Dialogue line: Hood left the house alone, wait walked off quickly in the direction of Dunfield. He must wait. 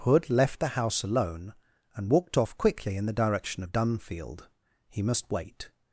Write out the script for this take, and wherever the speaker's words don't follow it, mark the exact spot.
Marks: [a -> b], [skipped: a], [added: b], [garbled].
Hood left the house alone, [wait -> and] walked off quickly in the direction of Dunfield. He must wait.